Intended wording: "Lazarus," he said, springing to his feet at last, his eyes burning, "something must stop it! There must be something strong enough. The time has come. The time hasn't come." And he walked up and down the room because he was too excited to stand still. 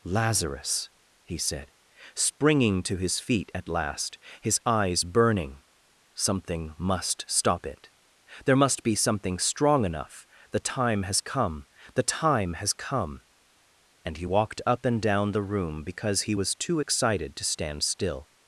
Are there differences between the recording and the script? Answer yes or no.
yes